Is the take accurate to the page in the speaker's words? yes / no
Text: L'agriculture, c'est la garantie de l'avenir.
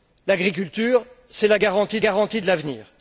no